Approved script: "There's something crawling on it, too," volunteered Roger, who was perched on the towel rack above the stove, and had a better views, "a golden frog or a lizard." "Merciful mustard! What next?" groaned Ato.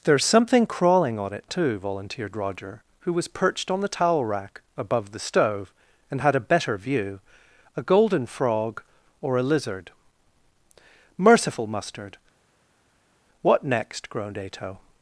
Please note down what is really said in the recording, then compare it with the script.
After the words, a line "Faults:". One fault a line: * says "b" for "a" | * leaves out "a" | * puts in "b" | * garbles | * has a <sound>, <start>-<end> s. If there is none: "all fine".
"There's something crawling on it, too," volunteered Roger, who was perched on the towel rack above the stove, and had a better view, "a golden frog or a lizard." "Merciful mustard! What next?" groaned Ato.
Faults:
* says "view" for "views"